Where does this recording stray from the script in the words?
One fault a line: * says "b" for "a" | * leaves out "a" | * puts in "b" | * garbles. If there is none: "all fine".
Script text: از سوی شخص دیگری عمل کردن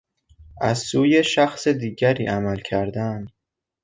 all fine